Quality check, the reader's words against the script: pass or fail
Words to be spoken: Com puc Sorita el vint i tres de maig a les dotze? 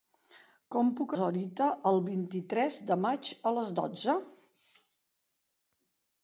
pass